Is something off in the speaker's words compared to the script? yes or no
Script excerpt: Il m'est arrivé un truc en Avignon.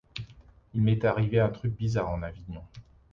yes